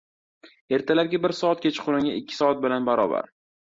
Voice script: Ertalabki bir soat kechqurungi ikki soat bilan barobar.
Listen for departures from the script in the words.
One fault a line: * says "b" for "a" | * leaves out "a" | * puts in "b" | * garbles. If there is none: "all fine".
all fine